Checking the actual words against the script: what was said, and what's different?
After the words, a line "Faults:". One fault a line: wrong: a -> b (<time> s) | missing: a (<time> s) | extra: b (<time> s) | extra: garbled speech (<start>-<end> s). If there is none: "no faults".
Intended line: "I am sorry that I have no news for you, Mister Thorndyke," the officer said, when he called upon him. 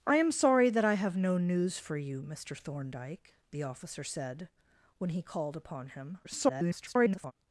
"I am sorry that I have no news for you, Mister Thorndyke," the officer said, when he called upon him. [garbled]
Faults:
extra: garbled speech (6.2-7.3 s)